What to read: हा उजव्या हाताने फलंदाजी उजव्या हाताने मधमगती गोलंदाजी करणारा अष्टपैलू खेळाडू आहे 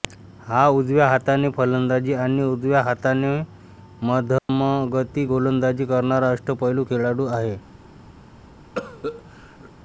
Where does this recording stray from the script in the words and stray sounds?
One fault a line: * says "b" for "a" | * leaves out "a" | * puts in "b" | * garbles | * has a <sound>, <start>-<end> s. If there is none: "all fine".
* puts in "आणि"
* has a dropout, 4.4-4.5 s
* has a cough, 8.8-9.7 s